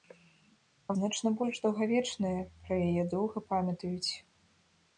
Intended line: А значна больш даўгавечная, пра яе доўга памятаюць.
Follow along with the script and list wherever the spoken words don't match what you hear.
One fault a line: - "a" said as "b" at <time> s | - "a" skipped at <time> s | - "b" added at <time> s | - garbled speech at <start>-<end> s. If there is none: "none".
none